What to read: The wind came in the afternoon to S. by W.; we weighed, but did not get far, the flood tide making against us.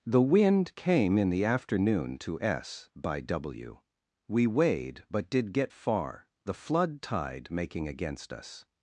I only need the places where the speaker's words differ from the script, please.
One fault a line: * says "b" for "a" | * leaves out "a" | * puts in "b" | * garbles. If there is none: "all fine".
* leaves out "not"